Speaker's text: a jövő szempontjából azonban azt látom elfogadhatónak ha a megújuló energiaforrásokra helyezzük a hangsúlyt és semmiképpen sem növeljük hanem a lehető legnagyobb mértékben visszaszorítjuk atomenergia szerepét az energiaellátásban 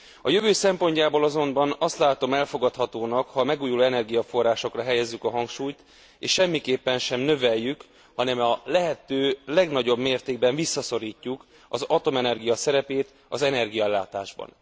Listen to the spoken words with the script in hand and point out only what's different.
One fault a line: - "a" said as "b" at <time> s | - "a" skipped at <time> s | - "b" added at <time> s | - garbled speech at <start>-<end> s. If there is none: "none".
- "az" added at 11.7 s